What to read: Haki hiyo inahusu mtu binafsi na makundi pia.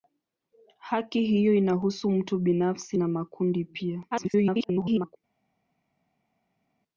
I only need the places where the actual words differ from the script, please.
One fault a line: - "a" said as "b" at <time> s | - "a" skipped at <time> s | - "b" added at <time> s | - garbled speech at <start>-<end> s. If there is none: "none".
- garbled speech at 4.1-5.2 s